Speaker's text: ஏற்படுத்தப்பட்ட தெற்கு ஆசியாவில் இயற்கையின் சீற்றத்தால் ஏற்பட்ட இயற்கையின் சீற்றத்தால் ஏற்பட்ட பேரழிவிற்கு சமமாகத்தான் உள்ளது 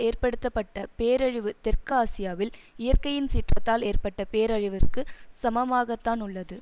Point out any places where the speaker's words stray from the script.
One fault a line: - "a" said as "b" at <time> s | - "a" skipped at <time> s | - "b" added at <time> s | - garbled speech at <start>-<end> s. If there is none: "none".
- "பேரழிவு" added at 1.0 s
- "இயற்கையின் சீற்றத்தால் ஏற்பட்ட" skipped at 4.2 s